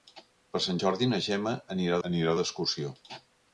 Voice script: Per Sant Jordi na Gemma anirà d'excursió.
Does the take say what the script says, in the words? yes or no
no